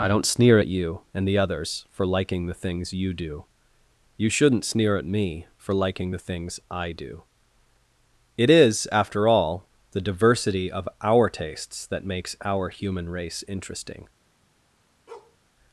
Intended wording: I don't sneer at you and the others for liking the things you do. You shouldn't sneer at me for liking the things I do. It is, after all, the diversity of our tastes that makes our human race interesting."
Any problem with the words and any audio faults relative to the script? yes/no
yes